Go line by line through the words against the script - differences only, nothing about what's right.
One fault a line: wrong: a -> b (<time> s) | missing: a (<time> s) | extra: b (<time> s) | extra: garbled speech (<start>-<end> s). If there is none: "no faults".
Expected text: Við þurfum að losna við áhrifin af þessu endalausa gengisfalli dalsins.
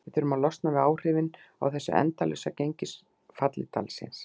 no faults